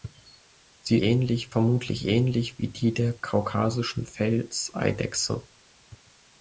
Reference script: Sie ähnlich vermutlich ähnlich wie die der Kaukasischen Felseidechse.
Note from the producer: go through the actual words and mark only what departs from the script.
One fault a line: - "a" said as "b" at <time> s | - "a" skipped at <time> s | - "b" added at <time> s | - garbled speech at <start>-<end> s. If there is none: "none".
none